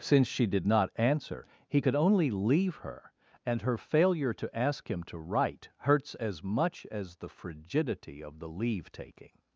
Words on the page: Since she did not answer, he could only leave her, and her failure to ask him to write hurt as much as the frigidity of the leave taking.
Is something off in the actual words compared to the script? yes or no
yes